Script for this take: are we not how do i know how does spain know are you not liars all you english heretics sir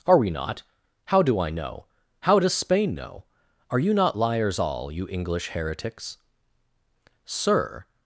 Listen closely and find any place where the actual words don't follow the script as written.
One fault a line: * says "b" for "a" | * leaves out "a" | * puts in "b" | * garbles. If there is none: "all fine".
all fine